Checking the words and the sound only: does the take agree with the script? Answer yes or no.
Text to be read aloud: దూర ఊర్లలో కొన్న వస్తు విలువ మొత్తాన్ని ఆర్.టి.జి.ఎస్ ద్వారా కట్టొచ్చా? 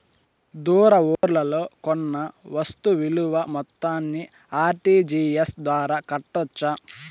no